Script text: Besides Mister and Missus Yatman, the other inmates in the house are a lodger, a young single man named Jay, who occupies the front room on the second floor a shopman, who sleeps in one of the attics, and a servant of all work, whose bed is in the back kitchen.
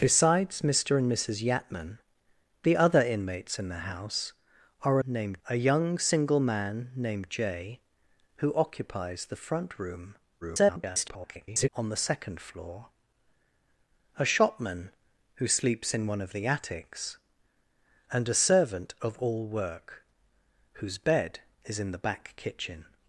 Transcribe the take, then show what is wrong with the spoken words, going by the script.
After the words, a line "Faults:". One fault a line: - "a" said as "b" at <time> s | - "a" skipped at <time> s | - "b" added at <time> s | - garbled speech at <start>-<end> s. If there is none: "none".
Besides Mister and Missus Yatman, the other inmates in the house are a named, a young single man named Jay, who occupies the front room [garbled] on the second floor a shopman, who sleeps in one of the attics, and a servant of all work, whose bed is in the back kitchen.
Faults:
- "lodger" said as "named" at 5.1 s
- garbled speech at 10.4-11.7 s